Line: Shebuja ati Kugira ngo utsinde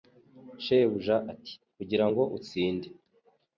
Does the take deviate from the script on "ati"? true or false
false